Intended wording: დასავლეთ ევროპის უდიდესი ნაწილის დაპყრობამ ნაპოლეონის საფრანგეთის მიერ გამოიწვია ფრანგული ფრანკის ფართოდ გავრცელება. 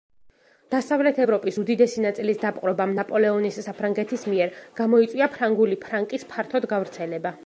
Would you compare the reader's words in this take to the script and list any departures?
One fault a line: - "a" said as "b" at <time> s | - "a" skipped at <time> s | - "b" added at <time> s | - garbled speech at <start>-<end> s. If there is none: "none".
none